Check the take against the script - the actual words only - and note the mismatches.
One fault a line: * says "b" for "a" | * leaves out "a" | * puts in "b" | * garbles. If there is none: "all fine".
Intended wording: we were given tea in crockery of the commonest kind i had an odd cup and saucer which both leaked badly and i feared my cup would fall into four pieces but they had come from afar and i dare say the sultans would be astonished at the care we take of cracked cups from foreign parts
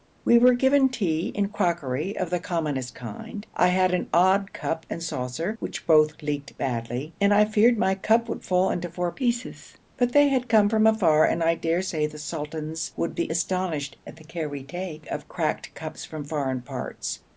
all fine